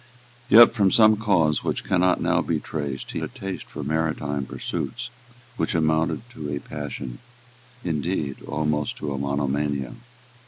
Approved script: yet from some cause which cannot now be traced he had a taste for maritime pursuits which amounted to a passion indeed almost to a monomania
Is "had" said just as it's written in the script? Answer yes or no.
no